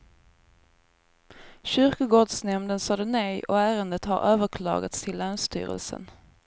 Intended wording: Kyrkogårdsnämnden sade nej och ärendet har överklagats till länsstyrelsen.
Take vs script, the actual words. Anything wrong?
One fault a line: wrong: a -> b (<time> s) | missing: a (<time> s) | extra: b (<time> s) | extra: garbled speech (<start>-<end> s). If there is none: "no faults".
no faults